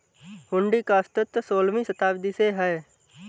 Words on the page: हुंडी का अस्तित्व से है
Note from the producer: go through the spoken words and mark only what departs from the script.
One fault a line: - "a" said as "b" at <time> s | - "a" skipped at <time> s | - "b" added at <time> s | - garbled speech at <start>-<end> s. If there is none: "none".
- "सोलहवीं शताब्दी" added at 1.4 s